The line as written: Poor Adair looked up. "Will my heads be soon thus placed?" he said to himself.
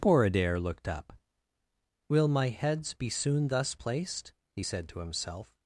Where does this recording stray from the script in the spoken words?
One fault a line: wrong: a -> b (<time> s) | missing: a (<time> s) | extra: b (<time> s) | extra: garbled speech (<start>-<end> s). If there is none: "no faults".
no faults